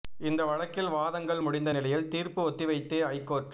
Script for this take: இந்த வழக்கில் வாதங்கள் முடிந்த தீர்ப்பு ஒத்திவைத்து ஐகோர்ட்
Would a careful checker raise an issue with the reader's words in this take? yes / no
yes